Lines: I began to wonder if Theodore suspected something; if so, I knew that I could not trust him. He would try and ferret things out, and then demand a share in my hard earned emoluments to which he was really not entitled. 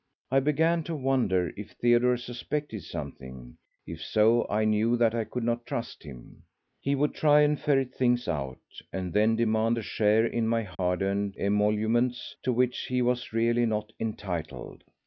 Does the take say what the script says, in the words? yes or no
yes